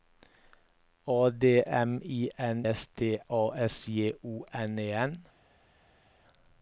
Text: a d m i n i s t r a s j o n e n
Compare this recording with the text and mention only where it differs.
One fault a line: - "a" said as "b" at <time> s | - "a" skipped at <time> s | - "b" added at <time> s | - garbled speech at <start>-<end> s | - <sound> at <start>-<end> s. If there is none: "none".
- "i" skipped at 2.6 s
- "r" skipped at 3.2 s